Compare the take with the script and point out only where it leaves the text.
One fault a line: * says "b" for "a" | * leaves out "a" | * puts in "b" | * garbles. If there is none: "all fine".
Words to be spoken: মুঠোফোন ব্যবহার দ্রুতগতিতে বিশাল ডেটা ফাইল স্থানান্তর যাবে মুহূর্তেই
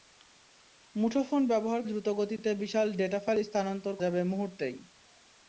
all fine